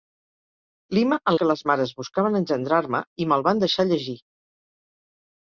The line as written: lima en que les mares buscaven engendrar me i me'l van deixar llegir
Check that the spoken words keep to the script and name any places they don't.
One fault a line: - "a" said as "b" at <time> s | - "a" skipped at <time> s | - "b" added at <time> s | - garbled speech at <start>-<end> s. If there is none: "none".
none